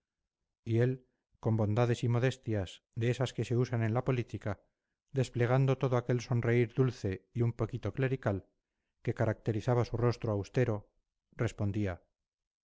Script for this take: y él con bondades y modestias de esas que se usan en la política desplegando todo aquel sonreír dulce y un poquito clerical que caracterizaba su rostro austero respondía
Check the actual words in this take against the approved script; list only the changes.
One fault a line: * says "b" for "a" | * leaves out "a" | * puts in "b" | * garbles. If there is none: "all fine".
all fine